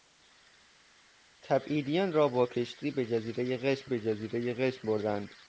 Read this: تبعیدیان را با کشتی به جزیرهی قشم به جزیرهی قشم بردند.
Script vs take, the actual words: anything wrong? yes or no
no